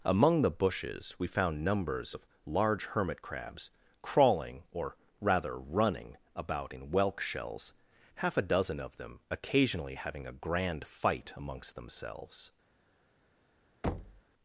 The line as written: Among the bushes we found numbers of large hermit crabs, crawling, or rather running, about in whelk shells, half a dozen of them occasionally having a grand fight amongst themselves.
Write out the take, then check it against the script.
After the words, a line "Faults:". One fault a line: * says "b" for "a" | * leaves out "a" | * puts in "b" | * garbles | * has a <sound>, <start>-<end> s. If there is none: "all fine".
Among the bushes we found numbers of large hermit crabs, crawling, or rather running, about in whelk shells, half a dozen of them occasionally having a grand fight amongst themselves.
Faults:
* has a thud, 13.8-14.2 s